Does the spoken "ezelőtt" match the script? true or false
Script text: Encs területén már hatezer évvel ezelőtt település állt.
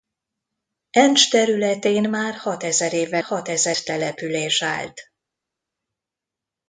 false